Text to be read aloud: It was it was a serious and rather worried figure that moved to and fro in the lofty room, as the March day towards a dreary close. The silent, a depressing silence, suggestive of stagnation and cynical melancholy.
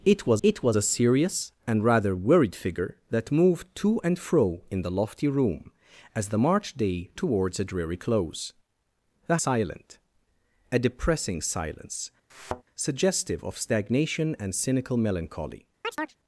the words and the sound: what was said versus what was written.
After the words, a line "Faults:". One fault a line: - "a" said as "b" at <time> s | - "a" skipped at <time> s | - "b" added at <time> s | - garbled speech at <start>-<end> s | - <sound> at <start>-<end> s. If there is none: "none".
It was it was a serious and rather worried figure that moved to and fro in the lofty room, as the March day towards a dreary close. The silent, a depressing silence, suggestive of stagnation and cynical melancholy.
Faults:
- thud at 12.3-12.6 s
- chirp at 15.8-16.2 s